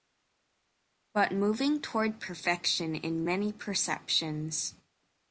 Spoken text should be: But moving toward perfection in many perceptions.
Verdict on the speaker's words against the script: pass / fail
pass